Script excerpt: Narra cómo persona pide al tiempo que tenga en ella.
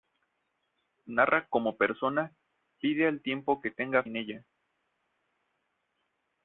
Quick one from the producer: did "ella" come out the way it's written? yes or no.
yes